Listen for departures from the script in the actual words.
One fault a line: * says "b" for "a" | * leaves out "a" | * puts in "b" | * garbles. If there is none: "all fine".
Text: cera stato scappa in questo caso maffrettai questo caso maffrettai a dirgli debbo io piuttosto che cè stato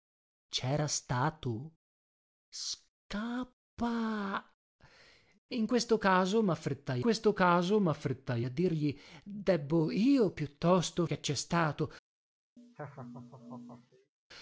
all fine